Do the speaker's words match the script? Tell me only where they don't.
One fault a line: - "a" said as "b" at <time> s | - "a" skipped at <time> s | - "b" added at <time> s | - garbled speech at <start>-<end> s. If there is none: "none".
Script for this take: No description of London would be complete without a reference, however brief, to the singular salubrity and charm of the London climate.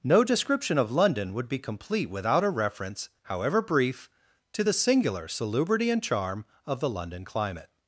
none